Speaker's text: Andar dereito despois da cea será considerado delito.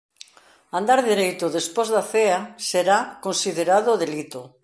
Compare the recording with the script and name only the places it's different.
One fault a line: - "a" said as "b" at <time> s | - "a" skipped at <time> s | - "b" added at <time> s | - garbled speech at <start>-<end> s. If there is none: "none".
none